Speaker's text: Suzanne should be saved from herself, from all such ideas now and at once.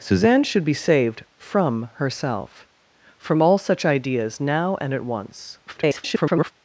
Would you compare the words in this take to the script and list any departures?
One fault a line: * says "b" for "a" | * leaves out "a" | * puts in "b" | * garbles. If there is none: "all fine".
* garbles